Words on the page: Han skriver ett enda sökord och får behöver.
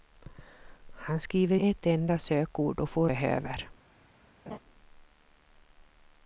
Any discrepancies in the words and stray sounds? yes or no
yes